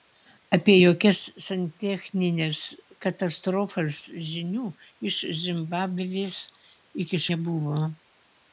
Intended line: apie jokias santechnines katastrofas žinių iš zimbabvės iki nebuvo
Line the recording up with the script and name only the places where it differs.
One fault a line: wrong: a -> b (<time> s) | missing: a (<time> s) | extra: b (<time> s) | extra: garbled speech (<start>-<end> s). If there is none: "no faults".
no faults